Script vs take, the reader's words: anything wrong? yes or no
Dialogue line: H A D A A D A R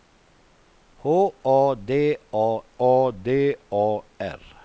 no